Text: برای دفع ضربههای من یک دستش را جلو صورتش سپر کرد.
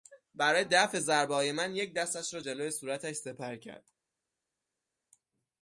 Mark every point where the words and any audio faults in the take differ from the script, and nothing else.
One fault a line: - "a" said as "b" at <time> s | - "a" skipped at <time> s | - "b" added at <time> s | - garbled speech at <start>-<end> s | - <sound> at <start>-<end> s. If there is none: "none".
none